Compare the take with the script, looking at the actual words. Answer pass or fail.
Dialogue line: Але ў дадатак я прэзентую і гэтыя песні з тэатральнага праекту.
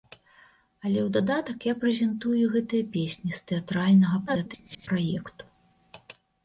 fail